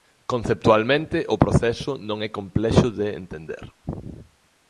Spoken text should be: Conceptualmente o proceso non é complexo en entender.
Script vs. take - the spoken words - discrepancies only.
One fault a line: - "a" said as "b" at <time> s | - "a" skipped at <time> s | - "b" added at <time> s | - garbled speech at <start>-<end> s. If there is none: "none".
- "en" said as "de" at 2.9 s